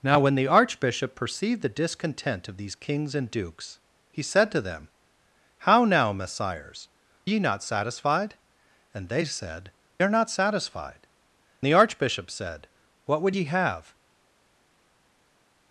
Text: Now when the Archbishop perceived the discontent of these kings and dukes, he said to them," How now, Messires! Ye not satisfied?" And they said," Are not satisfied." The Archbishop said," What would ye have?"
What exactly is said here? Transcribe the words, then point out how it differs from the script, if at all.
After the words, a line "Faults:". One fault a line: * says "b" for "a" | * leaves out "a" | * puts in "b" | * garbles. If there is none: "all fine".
Now when the Archbishop perceived the discontent of these kings and dukes, he said to them," How now, Messires! Ye not satisfied?" And they said," Are not satisfied." The Archbishop said," What would ye have?"
Faults:
all fine